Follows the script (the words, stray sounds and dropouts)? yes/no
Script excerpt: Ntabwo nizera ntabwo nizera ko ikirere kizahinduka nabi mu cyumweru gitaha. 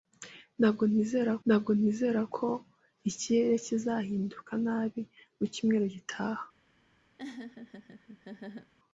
no